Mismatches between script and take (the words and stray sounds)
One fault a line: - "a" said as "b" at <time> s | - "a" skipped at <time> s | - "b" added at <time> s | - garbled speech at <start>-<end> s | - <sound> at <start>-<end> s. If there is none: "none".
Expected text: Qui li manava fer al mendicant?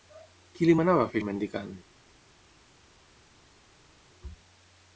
none